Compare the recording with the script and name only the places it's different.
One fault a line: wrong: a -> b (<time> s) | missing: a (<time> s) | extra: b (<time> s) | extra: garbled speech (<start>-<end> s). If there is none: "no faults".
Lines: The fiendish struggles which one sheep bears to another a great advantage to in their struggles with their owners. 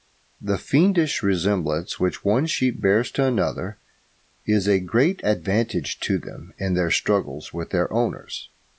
wrong: struggles -> resemblance (1.2 s)
extra: is (4.5 s)
extra: them (6.2 s)